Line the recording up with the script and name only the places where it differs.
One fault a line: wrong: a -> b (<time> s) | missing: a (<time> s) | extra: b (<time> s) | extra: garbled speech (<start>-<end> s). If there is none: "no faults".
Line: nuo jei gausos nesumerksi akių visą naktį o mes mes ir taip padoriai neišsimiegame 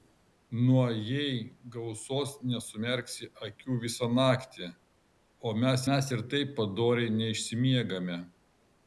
no faults